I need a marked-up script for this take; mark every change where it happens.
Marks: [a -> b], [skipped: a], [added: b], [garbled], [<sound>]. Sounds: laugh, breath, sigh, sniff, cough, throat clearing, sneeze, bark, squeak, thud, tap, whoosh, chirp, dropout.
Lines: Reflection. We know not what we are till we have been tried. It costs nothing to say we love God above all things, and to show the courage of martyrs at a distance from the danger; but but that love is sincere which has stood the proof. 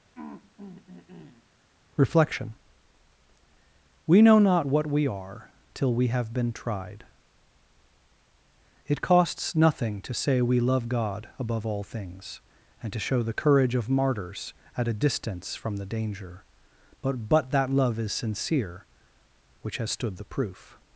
[throat clearing] Reflection. We know not what we are till we have been tried. It costs nothing to say we love God above all things, and to show the courage of martyrs at a distance from the danger; but but that love is sincere which has stood the proof.